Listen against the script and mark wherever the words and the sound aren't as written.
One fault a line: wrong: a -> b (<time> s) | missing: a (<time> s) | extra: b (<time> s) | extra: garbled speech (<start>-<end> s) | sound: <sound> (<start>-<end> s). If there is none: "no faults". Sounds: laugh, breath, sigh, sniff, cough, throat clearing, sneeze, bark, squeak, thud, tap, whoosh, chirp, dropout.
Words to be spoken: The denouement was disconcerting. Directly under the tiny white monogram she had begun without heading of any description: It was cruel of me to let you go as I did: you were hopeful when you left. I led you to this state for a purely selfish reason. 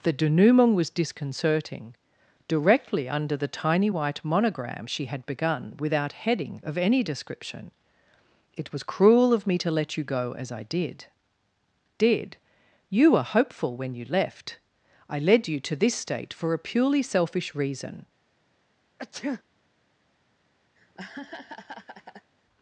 extra: did (12.0 s)
sound: sneeze (19.0-19.4 s)
sound: laugh (20.8-22.3 s)